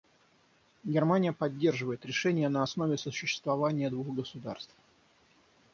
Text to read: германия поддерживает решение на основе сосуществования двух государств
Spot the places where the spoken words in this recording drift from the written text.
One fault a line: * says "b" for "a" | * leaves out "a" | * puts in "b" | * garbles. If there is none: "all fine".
all fine